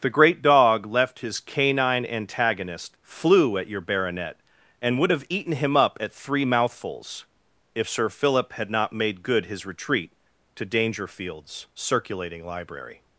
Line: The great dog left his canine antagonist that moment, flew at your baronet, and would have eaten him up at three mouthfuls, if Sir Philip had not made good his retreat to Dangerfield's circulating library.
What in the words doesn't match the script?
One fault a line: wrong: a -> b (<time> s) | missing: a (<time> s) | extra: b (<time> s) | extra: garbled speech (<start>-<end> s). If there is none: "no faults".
missing: that moment (3.0 s)